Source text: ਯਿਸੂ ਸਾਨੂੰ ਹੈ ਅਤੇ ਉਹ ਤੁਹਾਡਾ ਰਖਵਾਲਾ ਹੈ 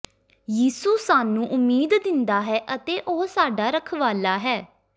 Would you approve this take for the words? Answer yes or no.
no